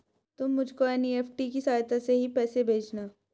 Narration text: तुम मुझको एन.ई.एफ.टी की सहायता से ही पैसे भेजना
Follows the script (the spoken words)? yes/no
yes